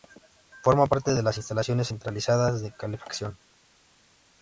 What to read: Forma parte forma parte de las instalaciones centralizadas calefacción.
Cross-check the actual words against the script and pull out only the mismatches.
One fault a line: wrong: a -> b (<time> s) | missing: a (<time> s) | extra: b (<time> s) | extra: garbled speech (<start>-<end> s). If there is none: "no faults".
missing: forma parte (1.1 s)
extra: de (2.6 s)